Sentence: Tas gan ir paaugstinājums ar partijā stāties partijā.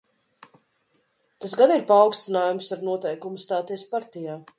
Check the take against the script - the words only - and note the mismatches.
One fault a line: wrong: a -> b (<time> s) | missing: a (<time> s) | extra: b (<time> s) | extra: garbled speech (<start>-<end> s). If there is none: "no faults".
wrong: partijā -> noteikumu (2.8 s)